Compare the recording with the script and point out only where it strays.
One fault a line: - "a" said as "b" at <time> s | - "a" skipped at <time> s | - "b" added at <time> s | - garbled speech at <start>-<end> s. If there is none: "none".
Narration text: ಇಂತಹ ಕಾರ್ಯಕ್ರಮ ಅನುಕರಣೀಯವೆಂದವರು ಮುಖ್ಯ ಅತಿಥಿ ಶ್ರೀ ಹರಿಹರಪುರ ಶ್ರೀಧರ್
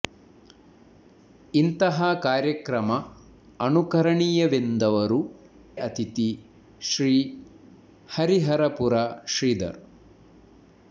- "ಮುಖ್ಯ" skipped at 5.2 s